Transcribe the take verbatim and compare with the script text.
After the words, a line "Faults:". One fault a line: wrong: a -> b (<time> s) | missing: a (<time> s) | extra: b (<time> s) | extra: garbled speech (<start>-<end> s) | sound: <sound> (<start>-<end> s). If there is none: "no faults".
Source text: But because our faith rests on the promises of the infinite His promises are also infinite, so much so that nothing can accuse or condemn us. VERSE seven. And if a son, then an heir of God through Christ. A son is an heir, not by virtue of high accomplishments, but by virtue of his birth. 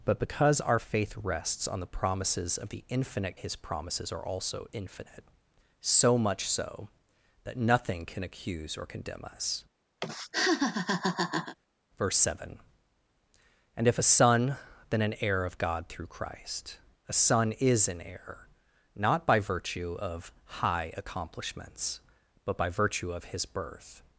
But because our faith rests on the promises of the infinite His promises are also infinite, so much so that nothing can accuse or condemn us. VERSE seven. And if a son, then an heir of God through Christ. A son is an heir, not by virtue of high accomplishments, but by virtue of his birth.
Faults:
sound: laugh (10.0-11.6 s)